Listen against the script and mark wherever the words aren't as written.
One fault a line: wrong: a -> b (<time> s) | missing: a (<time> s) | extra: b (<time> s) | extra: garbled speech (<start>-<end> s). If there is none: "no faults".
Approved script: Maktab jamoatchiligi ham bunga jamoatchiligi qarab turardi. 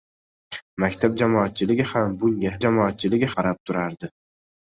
no faults